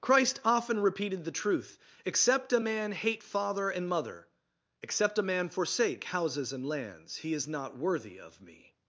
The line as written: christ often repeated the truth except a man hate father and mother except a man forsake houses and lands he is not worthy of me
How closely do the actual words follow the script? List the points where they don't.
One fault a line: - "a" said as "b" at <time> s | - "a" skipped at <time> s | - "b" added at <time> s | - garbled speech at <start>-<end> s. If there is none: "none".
none